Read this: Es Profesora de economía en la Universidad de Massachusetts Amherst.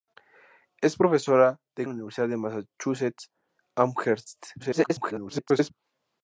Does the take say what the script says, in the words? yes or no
no